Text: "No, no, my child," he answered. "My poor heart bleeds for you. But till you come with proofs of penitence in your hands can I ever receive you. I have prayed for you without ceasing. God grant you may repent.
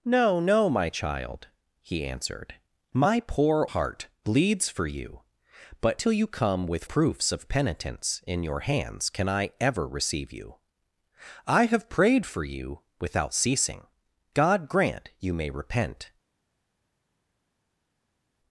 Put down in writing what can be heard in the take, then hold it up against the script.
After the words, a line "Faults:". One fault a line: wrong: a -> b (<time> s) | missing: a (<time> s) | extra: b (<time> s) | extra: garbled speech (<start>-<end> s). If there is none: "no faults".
"No, no, my child," he answered. "My poor heart bleeds for you. But till you come with proofs of penitence in your hands can I ever receive you. I have prayed for you without ceasing. God grant you may repent.
Faults:
no faults